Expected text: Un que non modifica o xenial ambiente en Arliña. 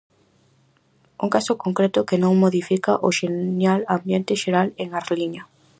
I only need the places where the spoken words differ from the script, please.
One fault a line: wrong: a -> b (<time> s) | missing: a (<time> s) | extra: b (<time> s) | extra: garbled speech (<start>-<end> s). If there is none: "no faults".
extra: caso concreto (1.4 s)
extra: xeral (4.4 s)